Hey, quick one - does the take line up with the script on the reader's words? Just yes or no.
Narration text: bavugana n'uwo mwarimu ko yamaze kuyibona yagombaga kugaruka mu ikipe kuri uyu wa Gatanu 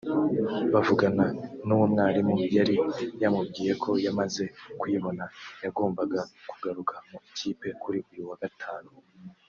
no